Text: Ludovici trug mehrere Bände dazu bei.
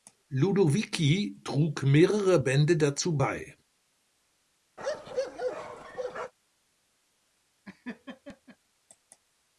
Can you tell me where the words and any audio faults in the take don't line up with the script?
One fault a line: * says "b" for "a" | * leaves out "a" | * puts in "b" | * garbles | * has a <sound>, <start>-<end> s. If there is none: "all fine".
* has a bark, 4.8-6.3 s
* has a laugh, 7.6-8.6 s